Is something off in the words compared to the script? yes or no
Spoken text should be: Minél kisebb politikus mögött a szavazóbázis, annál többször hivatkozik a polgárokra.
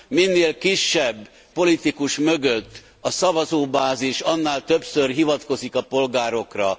no